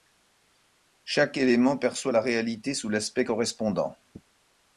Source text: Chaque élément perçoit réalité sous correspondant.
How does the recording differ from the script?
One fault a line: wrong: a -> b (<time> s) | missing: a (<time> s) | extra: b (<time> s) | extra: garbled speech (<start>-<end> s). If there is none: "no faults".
extra: la (2.1 s)
extra: l'aspect (2.9 s)